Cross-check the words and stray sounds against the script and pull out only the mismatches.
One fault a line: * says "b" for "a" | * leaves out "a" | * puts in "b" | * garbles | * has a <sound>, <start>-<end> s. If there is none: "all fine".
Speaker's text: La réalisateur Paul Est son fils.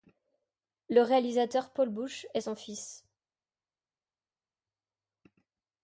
* says "Le" for "La"
* puts in "Bush"